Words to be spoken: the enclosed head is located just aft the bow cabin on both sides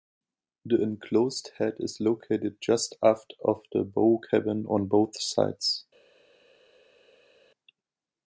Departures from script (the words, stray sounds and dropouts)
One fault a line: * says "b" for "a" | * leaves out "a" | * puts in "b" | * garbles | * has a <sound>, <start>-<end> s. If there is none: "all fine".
* puts in "of"